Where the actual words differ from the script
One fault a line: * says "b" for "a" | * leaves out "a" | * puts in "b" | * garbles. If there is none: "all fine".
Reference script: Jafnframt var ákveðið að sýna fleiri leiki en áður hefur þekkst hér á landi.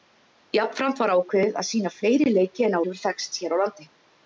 * leaves out "áður"